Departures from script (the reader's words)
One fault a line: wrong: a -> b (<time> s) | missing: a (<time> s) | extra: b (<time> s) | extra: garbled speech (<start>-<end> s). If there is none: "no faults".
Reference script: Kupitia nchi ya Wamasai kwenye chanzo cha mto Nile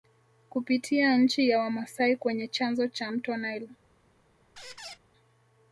no faults